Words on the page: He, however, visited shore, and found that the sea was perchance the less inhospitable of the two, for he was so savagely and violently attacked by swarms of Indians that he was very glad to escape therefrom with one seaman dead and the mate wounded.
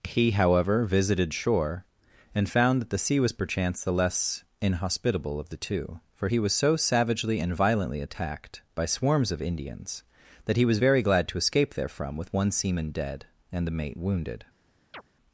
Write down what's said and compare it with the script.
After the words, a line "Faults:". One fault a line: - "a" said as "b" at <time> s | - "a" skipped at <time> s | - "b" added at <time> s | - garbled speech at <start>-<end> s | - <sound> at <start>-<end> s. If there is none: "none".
He, however, visited shore, and found that the sea was perchance the less inhospitable of the two, for he was so savagely and violently attacked by swarms of Indians that he was very glad to escape therefrom with one seaman dead and the mate wounded.
Faults:
- chirp at 14.9-15.0 s